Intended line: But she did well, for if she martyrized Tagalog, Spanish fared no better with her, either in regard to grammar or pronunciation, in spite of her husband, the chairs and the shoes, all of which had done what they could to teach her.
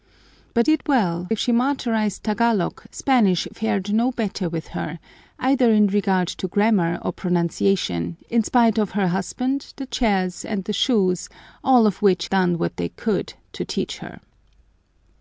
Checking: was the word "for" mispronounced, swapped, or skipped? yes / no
yes